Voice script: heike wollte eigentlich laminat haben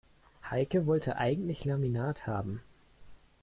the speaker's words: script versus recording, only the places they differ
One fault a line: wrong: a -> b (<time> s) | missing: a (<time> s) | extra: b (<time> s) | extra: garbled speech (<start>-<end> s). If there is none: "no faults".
no faults